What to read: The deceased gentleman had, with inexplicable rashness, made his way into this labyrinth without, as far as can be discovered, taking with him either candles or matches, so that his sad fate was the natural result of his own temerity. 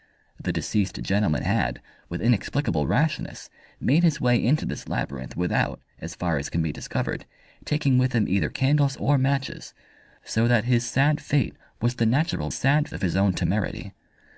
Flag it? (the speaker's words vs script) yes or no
yes